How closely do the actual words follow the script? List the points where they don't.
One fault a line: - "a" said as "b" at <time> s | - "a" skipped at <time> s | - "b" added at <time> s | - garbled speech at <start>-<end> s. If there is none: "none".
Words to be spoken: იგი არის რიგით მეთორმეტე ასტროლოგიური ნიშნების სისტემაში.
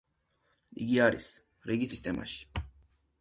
- "მეთორმეტე ასტროლოგიური ნიშნების" skipped at 1.9 s